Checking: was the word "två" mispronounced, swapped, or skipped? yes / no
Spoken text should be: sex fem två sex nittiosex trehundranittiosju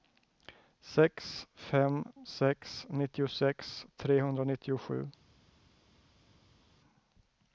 yes